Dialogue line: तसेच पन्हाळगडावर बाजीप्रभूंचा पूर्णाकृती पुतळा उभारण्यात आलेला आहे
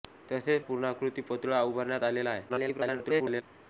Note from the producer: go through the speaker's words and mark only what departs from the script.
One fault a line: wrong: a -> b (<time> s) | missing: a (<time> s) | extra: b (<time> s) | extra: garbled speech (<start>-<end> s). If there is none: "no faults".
missing: पन्हाळगडावर बाजीप्रभूंचा (0.6 s)
extra: garbled speech (2.5-3.4 s)